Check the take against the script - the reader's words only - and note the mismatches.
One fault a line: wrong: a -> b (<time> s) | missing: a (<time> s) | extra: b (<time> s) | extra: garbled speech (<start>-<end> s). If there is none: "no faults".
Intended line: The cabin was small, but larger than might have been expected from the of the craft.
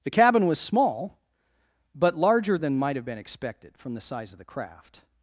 extra: size (4.0 s)